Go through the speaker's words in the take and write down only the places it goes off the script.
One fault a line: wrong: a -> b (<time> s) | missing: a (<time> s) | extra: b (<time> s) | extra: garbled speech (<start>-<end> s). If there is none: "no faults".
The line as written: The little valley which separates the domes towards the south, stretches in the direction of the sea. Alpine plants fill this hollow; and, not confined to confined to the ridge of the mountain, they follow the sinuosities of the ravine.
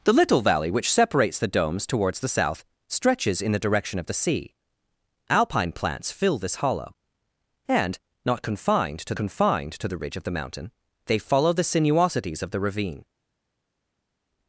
no faults